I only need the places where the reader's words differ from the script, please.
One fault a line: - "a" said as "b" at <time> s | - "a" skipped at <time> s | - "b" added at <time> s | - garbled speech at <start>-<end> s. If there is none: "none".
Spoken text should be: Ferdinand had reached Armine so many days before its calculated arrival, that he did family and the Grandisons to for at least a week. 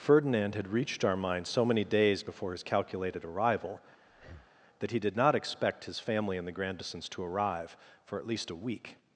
- "its" said as "his" at 2.5 s
- "not expect his" added at 5.1 s
- "arrive" added at 7.2 s